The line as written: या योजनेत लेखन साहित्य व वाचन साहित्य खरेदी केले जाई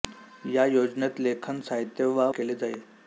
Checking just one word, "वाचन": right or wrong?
wrong